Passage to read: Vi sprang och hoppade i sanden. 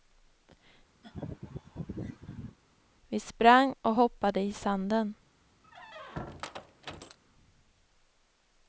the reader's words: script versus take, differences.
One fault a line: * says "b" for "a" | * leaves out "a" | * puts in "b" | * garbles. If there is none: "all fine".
all fine